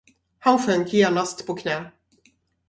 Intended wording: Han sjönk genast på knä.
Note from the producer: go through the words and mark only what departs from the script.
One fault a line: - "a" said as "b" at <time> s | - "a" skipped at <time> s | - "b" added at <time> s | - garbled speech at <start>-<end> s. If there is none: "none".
none